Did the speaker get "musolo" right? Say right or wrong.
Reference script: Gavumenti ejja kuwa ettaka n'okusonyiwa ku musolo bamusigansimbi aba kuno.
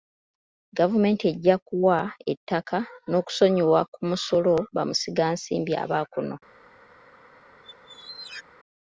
right